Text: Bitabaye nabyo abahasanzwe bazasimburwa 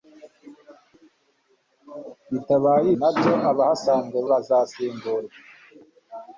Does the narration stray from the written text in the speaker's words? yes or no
no